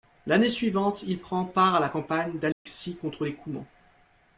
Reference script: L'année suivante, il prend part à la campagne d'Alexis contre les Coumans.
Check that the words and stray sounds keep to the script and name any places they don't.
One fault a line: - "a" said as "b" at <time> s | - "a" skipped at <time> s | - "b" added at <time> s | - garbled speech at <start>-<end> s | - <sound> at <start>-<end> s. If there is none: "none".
- dropout at 2.5-2.7 s